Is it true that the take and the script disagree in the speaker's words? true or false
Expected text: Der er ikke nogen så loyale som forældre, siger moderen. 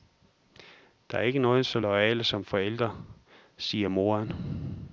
false